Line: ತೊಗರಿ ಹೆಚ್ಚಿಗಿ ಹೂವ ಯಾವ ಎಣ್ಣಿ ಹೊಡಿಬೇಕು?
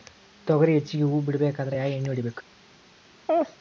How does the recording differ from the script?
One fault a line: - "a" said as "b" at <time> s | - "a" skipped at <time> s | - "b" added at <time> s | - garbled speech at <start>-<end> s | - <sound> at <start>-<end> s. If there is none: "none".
- "ಬಿಡಬೇಕಾದ್ರ" added at 1.2 s
- laugh at 3.3-3.6 s